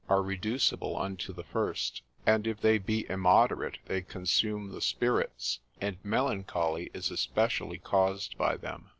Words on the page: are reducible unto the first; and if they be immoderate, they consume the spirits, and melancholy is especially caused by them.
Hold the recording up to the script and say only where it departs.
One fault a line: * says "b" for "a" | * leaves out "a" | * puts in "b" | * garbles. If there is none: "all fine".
all fine